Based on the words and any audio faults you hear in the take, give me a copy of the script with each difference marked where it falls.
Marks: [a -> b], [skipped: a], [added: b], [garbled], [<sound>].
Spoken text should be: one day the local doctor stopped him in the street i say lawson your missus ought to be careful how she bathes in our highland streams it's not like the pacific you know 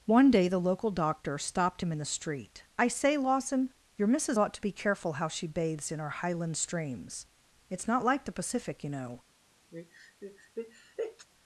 one day the local doctor stopped him in the street i say lawson your missus ought to be careful how she bathes in our highland streams it's not like the pacific you know [sneeze]